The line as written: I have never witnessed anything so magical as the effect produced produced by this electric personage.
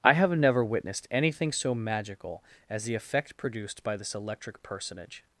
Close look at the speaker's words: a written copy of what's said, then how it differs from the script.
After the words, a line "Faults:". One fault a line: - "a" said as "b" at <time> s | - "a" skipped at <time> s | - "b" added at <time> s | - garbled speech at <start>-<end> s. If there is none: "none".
I have never witnessed anything so magical as the effect produced by this electric personage.
Faults:
- "produced" skipped at 3.8 s